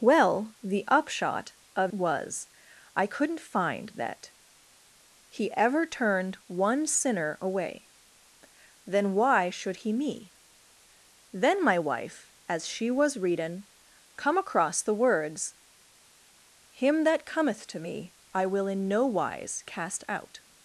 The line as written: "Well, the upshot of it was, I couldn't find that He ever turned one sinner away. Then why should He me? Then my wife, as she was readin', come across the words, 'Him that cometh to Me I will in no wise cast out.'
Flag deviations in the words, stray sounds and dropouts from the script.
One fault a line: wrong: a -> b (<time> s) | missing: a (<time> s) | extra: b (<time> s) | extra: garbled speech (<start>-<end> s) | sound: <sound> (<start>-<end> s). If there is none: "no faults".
missing: it (1.9 s)